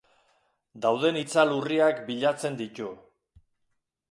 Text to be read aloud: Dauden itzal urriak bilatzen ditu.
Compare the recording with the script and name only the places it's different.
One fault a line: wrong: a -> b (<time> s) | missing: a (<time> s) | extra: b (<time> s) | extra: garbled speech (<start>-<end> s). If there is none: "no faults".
no faults